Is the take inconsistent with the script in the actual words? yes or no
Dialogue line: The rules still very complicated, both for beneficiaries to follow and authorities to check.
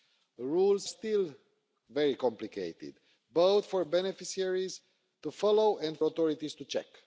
no